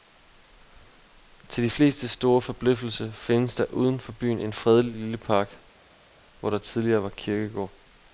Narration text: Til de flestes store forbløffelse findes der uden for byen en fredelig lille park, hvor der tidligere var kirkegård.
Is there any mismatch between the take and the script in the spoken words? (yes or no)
no